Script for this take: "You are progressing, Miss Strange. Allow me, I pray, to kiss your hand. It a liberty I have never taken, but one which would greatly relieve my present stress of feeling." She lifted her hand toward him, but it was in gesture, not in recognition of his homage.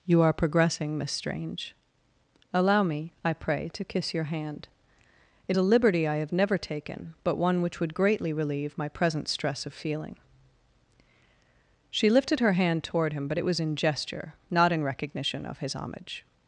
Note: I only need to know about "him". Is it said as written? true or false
true